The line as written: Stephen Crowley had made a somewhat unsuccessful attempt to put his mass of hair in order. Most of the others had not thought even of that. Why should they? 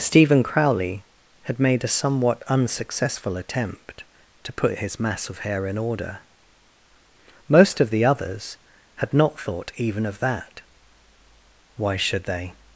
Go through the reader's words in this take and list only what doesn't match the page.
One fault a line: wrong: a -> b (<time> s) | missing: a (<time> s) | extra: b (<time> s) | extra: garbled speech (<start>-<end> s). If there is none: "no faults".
no faults